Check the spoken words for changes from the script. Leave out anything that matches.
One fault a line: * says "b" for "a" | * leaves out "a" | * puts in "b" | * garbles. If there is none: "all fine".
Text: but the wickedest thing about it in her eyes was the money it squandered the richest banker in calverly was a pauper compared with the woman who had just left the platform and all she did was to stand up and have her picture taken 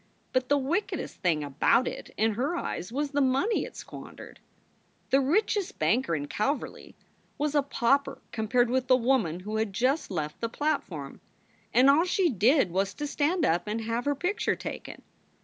all fine